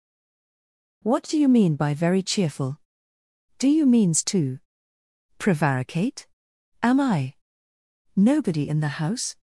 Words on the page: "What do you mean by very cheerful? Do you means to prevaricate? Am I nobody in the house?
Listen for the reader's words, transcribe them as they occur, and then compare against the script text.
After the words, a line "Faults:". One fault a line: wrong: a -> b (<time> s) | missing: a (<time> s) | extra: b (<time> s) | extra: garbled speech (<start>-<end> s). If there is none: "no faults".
"What do you mean by very cheerful? Do you means to prevaricate? Am I nobody in the house?
Faults:
no faults